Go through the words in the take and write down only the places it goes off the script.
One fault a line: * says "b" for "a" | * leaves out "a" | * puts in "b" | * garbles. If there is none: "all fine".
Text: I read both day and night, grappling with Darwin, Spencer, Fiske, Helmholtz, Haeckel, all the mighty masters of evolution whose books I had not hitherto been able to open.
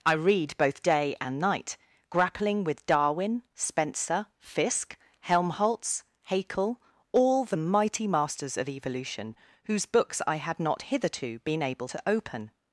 all fine